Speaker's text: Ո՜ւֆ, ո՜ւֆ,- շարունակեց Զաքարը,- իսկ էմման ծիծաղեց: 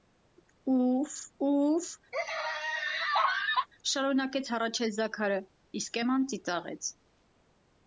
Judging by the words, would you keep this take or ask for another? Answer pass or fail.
fail